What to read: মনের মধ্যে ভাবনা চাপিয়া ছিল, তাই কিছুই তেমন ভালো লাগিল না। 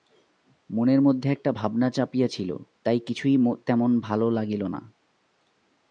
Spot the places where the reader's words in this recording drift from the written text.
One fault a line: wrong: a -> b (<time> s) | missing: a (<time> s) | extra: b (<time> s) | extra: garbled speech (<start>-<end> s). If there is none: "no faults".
extra: একটা (1.3 s)